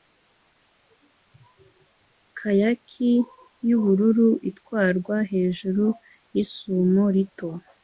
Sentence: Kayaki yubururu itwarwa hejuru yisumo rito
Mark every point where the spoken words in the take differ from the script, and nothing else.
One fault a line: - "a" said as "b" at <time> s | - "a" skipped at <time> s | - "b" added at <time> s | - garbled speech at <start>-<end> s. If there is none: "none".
none